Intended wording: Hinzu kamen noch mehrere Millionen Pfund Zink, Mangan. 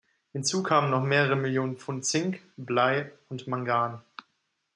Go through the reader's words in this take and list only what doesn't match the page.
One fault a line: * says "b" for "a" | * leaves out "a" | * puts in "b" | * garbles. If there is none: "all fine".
* puts in "Blei und"